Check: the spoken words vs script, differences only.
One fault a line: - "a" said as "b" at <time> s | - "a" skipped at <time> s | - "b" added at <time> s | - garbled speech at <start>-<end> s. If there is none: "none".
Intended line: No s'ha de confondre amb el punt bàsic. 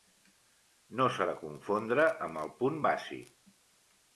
none